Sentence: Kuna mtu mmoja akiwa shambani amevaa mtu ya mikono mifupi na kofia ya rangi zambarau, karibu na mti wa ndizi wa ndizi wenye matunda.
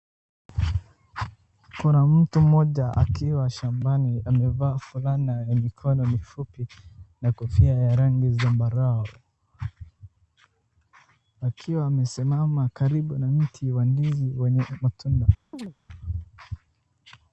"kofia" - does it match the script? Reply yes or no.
yes